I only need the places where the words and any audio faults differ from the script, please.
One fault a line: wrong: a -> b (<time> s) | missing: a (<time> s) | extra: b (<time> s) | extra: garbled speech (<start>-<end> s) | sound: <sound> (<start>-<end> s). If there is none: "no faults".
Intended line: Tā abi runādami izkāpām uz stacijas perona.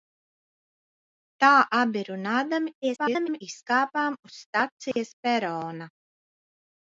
extra: garbled speech (2.8-3.4 s)
sound: dropout (4.9-5.0 s)